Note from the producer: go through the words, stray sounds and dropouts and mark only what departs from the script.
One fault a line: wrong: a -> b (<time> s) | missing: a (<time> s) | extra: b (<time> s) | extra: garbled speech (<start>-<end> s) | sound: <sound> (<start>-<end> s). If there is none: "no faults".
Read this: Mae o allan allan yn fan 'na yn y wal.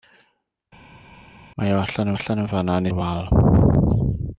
no faults